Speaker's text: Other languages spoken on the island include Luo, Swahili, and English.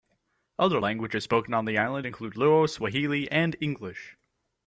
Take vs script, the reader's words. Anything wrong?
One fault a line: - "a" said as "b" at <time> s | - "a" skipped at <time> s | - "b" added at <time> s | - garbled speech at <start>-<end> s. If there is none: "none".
none